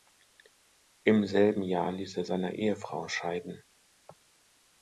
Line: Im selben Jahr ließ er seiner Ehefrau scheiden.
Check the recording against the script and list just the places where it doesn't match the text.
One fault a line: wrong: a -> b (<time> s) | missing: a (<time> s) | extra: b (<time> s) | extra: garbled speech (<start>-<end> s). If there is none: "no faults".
no faults